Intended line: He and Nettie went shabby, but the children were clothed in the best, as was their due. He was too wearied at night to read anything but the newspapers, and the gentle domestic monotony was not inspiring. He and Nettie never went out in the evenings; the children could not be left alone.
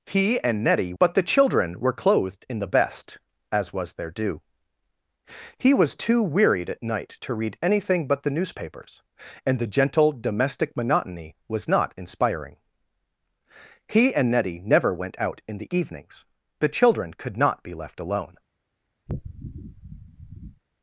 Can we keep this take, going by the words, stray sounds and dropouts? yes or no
no